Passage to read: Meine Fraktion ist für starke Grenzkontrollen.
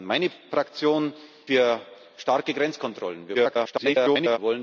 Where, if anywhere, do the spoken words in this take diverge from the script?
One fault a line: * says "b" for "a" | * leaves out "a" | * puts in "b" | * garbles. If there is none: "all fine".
* leaves out "ist"
* garbles